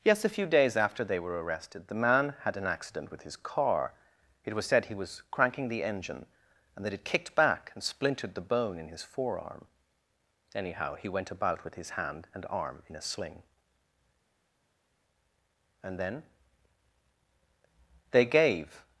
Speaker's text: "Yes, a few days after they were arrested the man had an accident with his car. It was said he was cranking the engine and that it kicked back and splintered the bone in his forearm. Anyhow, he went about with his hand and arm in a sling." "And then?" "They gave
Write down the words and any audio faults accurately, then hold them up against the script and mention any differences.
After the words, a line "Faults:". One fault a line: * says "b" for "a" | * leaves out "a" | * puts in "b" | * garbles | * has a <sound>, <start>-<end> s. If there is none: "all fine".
"Yes, a few days after they were arrested the man had an accident with his car. It was said he was cranking the engine and that it kicked back and splintered the bone in his forearm. Anyhow, he went about with his hand and arm in a sling." "And then?" "They gave
Faults:
all fine